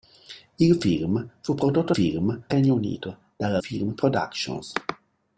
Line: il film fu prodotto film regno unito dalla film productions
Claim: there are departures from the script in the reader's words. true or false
false